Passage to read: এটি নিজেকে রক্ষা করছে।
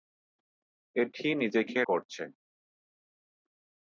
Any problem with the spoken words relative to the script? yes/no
yes